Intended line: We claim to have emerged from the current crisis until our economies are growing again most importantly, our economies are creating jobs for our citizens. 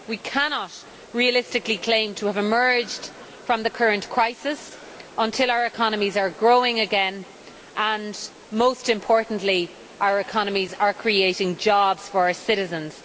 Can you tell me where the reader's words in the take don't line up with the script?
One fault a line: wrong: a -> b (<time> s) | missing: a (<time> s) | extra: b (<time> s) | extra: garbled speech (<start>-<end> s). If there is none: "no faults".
extra: cannot realistically (0.2 s)
extra: and (7.8 s)